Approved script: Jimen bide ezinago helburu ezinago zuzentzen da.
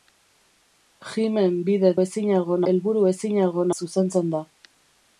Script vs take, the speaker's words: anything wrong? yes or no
no